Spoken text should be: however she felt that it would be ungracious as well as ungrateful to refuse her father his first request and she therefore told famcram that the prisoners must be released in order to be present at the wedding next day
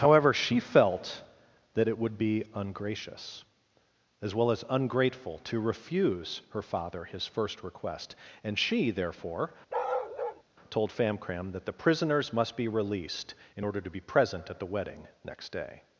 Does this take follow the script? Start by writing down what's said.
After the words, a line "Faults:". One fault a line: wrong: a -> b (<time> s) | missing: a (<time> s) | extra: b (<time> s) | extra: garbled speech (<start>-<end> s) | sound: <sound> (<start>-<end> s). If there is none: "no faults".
however she felt that it would be ungracious as well as ungrateful to refuse her father his first request and she therefore told famcram that the prisoners must be released in order to be present at the wedding next day
Faults:
sound: bark (9.7-10.4 s)